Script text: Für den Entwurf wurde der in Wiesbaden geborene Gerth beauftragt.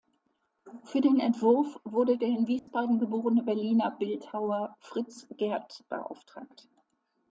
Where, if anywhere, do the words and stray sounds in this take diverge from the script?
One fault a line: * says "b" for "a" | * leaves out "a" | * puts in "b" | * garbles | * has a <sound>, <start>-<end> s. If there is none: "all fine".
* has a dropout, 2.6-2.7 s
* puts in "Berliner Bildhauer Fritz"